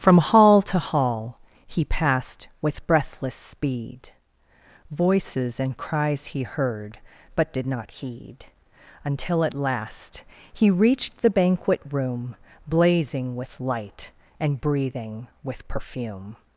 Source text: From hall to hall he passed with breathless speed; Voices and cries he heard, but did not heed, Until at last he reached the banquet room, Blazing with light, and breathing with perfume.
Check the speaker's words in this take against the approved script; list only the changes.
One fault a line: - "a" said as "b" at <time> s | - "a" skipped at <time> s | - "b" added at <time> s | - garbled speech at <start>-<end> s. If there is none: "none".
none